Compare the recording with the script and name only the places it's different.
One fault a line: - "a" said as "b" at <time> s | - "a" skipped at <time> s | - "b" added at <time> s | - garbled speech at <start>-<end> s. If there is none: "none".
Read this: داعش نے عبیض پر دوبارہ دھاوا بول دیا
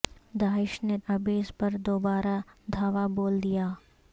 none